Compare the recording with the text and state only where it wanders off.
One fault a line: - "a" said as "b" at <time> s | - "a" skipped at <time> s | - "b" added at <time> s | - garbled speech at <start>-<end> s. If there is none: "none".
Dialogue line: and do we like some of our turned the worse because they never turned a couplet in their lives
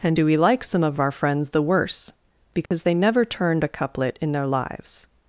- "turned" said as "friends" at 1.1 s